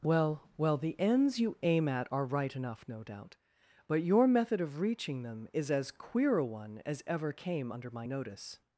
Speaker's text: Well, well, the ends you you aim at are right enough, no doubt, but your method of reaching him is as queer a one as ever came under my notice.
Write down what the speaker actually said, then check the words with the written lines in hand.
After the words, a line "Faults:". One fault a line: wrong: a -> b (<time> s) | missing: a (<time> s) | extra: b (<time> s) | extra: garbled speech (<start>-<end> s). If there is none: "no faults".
Well, well, the ends you aim at are right enough, no doubt, but your method of reaching them is as queer a one as ever came under my notice.
Faults:
missing: you (1.6 s)
wrong: him -> them (5.2 s)